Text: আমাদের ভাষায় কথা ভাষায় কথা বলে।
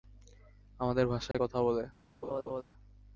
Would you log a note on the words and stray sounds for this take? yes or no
yes